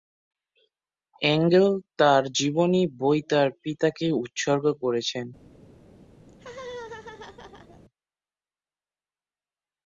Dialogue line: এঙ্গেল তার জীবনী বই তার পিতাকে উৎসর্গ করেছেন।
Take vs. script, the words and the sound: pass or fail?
fail